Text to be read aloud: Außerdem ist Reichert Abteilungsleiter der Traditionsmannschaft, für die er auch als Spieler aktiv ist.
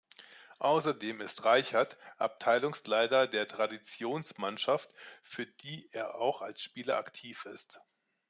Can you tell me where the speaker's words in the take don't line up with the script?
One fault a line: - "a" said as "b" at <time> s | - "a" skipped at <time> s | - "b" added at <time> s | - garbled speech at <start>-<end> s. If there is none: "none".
none